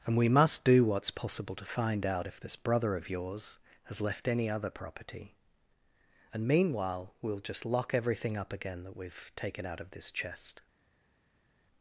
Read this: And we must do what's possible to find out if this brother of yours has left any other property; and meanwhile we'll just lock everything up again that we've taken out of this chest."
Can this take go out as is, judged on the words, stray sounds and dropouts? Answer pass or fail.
pass